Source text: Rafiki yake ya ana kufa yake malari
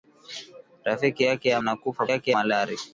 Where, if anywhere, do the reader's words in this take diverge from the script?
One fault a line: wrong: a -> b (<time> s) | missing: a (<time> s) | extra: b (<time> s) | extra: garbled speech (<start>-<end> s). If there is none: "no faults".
no faults